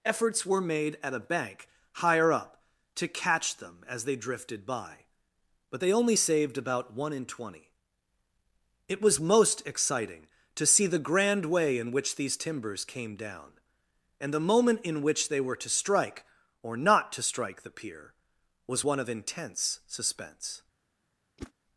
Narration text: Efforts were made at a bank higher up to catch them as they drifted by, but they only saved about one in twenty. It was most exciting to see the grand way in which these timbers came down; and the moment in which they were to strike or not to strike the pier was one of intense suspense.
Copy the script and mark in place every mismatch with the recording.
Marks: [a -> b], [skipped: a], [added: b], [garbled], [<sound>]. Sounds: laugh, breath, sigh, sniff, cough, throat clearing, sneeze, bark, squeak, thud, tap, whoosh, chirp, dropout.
Efforts were made at a bank higher up to catch them as they drifted by, but they only saved about one in twenty. It was most exciting to see the grand way in which these timbers came down; and the moment in which they were to strike or not to strike the pier was one of intense suspense. [whoosh]